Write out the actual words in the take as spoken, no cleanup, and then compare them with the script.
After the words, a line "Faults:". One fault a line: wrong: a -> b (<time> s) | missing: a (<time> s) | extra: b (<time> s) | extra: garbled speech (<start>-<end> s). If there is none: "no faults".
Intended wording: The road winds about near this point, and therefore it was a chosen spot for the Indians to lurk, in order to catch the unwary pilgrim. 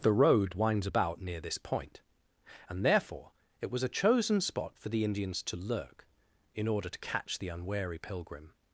The road winds about near this point, and therefore it was a chosen spot for the Indians to lurk, in order to catch the unwary pilgrim.
Faults:
no faults